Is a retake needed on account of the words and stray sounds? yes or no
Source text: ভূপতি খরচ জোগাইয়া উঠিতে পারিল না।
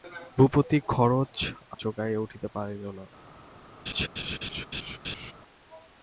yes